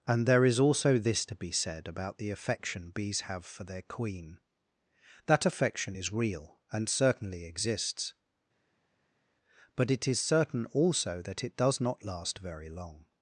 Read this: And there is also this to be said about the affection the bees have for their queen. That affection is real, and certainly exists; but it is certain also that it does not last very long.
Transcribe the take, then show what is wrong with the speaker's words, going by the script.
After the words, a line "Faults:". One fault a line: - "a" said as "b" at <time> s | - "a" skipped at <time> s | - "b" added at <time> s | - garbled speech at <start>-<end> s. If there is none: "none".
And there is also this to be said about the affection bees have for their queen. That affection is real, and certainly exists; but it is certain also that it does not last very long.
Faults:
- "the" skipped at 2.9 s